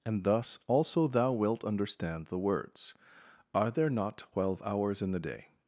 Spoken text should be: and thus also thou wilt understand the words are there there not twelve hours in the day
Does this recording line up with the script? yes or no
no